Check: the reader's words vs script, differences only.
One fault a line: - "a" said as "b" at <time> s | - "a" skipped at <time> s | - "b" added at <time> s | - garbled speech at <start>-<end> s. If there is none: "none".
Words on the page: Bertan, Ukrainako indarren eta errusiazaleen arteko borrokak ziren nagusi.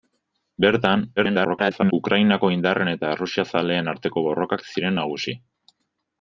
- garbled speech at 1.2-1.9 s